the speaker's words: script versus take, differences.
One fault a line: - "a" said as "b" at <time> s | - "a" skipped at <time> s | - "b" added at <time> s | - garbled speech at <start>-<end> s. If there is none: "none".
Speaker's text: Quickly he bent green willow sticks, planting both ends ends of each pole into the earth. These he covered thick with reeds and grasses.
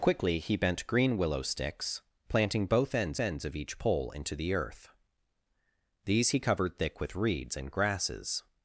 none